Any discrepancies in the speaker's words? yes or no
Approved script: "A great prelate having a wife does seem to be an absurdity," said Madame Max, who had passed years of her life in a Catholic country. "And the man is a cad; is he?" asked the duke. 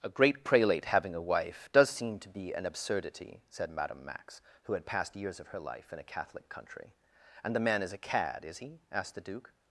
no